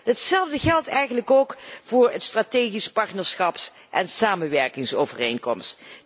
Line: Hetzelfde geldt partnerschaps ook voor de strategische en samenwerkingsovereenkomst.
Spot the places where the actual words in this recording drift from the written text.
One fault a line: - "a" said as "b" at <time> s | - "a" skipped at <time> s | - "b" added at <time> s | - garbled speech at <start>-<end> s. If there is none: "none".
- "partnerschaps" said as "eigenlijk" at 0.9 s
- "partnerschaps" added at 2.9 s